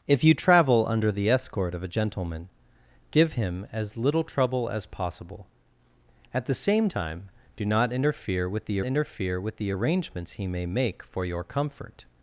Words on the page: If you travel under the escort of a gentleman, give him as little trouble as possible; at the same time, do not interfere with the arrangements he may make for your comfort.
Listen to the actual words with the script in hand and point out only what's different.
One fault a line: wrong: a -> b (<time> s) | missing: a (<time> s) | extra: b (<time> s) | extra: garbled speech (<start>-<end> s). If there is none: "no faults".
extra: interfere with the (8.8 s)